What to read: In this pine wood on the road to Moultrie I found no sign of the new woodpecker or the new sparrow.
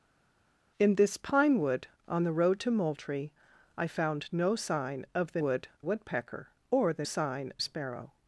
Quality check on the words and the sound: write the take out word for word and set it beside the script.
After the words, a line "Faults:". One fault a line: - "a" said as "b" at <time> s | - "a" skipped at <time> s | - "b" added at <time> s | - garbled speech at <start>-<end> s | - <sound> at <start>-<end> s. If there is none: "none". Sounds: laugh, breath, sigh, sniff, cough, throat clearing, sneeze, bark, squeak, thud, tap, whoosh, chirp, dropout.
In this pine wood on the road to Moultrie I found no sign of the wood woodpecker or the sign sparrow.
Faults:
- "new" said as "wood" at 5.4 s
- "new" said as "sign" at 7.0 s